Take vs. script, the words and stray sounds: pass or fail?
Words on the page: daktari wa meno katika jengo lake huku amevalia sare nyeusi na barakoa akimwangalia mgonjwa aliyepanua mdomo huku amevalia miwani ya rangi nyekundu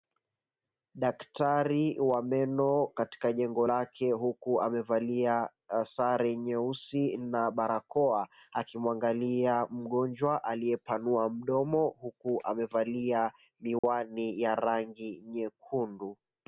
fail